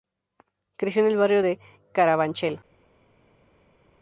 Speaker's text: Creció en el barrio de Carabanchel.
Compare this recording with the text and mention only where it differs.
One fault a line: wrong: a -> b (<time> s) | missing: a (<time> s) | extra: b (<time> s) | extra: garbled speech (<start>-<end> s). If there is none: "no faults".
no faults